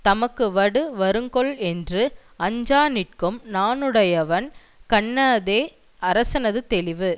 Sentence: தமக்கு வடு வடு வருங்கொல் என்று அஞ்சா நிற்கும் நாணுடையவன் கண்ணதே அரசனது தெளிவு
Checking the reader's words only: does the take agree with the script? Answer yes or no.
no